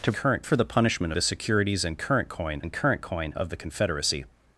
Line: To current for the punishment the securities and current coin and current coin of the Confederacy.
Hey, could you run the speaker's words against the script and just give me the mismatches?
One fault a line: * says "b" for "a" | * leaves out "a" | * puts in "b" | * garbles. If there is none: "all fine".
all fine